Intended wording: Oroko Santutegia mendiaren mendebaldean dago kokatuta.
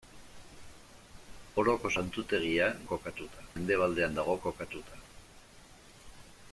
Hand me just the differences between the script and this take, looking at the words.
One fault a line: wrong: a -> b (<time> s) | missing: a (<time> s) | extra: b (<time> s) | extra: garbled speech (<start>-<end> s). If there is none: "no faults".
wrong: mendiaren -> kokatuta (2.9 s)